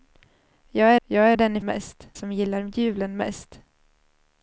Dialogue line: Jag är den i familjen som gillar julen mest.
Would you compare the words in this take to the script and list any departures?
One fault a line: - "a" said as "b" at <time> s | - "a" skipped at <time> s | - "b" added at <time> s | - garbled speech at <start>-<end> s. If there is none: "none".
- "jag" added at 1.0 s
- "familjen" said as "mest" at 1.6 s